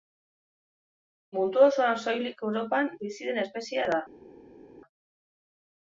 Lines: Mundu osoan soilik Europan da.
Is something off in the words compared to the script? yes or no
yes